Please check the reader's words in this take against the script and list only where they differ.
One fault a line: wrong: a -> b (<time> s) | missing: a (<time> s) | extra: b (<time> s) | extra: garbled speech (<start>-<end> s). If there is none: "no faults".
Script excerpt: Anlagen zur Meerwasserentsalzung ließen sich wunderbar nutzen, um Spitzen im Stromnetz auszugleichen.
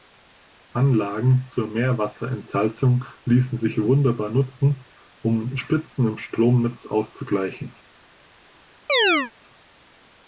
no faults